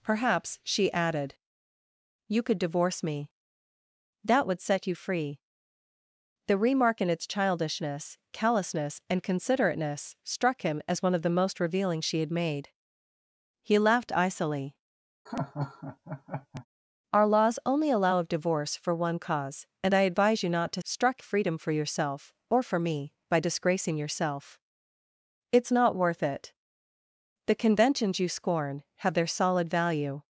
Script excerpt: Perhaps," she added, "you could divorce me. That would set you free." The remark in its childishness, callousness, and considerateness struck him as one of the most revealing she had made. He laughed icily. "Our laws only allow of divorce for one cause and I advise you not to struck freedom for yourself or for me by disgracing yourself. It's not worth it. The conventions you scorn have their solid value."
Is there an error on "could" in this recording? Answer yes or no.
no